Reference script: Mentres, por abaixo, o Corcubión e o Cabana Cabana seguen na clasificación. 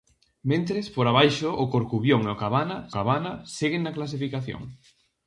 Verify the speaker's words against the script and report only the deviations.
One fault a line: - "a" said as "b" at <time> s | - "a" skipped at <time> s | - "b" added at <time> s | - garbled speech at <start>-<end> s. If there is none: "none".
none